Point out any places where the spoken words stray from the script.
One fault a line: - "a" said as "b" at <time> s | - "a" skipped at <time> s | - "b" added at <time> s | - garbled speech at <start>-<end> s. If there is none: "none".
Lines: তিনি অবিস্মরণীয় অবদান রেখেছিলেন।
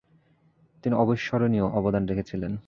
none